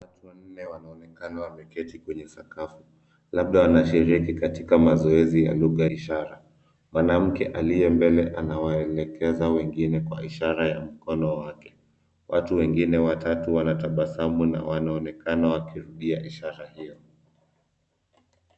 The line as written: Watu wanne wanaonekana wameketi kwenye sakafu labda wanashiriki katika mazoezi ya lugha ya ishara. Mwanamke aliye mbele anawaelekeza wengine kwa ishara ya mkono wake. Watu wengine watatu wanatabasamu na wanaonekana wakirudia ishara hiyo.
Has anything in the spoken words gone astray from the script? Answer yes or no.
yes